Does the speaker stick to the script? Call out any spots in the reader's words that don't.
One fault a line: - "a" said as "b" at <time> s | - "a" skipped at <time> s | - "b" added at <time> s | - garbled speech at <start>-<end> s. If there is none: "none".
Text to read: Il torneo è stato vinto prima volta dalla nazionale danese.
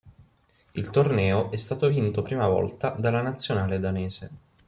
none